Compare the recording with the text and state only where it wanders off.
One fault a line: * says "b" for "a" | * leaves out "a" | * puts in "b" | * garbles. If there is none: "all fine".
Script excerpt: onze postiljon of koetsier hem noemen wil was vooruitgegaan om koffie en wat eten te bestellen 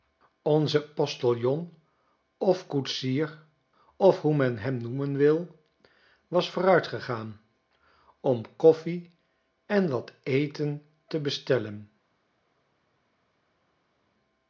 * puts in "of hoe men"